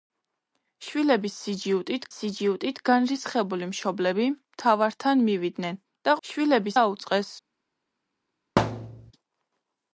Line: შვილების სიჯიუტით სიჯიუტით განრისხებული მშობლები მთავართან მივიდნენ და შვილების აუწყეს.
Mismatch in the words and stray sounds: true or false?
true